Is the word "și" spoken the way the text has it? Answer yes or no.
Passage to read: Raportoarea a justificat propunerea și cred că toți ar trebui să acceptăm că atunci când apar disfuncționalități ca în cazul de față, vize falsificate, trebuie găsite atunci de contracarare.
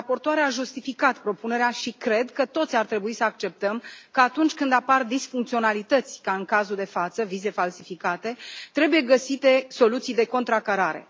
yes